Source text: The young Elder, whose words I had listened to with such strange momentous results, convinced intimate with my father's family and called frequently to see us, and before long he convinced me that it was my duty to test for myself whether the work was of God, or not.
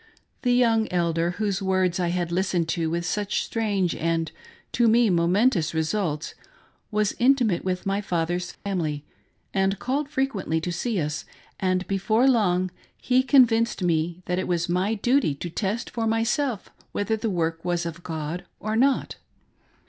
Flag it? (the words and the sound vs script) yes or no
yes